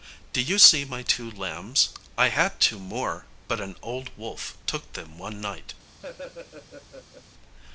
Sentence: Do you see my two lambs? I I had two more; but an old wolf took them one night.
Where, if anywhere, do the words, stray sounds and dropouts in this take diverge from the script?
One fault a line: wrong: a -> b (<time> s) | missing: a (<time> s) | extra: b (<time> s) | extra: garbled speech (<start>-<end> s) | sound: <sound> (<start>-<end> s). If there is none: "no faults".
missing: I (2.3 s)
sound: laugh (6.0-7.2 s)